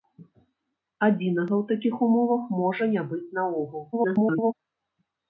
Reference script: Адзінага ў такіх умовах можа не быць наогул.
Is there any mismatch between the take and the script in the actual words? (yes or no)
yes